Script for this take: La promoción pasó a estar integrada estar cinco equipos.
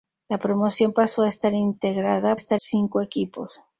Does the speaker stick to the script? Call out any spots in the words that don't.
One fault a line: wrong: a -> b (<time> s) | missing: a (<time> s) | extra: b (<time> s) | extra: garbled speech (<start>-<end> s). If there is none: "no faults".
no faults